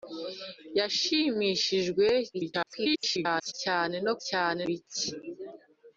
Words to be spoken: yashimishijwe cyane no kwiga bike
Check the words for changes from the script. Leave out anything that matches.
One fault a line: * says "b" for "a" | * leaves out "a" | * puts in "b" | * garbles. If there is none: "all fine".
* garbles
* says "cyane" for "kwiga"